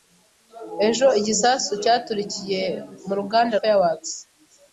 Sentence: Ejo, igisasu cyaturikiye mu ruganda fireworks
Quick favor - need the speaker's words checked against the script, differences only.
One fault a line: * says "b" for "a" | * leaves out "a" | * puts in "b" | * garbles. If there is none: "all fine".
all fine